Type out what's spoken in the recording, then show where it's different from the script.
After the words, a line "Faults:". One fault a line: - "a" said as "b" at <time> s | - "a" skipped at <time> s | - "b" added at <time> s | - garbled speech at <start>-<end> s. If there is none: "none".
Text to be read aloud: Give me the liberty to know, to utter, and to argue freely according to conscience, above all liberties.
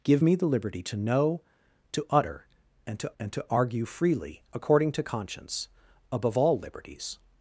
Give me the liberty to know, to utter, and to and to argue freely according to conscience, above all liberties.
Faults:
- "and to" added at 3.2 s